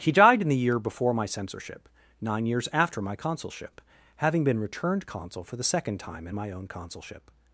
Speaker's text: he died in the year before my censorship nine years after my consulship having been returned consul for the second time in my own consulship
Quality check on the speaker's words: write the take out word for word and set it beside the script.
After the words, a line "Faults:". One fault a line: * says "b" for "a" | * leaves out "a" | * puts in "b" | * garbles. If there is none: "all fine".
he died in the year before my censorship nine years after my consulship having been returned consul for the second time in my own consulship
Faults:
all fine